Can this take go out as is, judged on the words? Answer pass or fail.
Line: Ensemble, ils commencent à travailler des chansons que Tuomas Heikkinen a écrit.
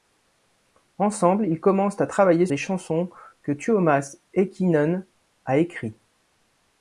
pass